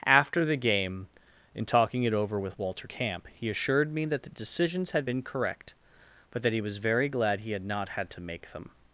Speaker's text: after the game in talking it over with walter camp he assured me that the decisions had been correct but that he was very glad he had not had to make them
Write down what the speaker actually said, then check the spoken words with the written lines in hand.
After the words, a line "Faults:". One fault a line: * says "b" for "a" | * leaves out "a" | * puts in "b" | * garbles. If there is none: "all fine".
after the game in talking it over with walter camp he assured me that the decisions had been correct but that he was very glad he had not had to make them
Faults:
all fine